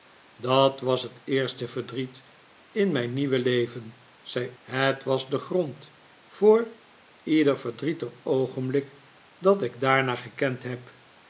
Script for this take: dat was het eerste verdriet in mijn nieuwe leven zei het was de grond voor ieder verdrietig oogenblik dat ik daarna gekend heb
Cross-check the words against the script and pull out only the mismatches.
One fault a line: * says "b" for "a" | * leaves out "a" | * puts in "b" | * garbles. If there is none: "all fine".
all fine